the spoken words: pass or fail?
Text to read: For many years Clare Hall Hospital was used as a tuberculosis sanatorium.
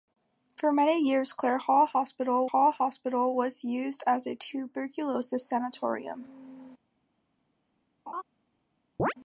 fail